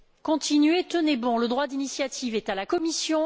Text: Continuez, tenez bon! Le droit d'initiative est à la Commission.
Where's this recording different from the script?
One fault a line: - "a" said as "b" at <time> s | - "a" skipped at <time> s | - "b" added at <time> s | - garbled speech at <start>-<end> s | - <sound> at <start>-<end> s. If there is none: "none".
none